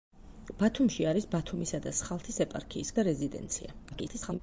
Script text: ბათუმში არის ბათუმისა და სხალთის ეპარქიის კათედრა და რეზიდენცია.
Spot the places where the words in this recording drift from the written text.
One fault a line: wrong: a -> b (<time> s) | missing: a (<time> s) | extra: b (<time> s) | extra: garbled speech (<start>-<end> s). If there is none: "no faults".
missing: კათედრა (2.9 s)
extra: garbled speech (3.9-4.4 s)